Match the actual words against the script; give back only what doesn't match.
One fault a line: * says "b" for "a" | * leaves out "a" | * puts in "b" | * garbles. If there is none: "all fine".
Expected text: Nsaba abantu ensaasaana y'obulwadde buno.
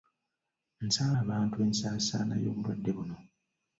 all fine